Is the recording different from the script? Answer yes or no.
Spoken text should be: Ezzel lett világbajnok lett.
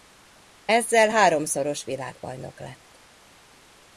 yes